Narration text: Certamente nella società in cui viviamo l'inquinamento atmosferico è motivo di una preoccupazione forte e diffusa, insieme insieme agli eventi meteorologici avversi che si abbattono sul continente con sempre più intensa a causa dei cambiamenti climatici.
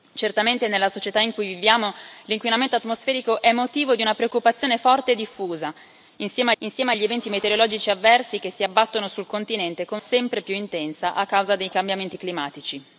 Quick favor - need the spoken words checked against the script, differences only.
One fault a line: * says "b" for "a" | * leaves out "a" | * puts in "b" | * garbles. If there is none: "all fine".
all fine